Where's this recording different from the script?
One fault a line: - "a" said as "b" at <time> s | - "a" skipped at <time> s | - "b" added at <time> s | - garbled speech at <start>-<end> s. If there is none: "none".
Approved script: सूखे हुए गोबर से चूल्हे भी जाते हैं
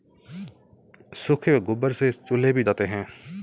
none